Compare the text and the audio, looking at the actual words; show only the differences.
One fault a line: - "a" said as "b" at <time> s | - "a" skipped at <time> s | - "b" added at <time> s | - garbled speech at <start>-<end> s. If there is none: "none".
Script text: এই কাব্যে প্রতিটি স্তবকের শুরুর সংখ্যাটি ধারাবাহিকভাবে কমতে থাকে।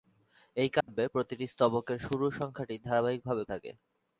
- "কমতে" skipped at 3.4 s